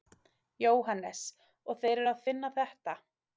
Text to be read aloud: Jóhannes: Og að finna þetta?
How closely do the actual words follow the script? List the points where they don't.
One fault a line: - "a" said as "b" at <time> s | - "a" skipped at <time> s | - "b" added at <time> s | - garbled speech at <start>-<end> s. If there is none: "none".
- "þeir eru" added at 1.9 s